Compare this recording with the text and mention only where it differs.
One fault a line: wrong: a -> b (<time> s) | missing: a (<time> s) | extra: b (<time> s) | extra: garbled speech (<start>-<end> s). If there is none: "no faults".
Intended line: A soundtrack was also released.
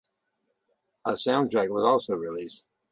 no faults